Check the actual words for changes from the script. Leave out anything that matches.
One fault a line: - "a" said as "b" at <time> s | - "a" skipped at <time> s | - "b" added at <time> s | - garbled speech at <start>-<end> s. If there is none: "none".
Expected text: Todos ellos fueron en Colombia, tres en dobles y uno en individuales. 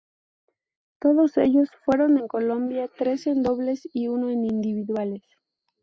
none